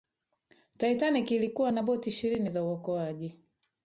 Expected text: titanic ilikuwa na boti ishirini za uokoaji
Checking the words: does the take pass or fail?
pass